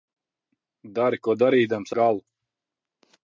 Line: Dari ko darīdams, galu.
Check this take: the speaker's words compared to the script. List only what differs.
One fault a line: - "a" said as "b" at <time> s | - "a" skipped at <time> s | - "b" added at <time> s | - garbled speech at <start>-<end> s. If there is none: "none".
none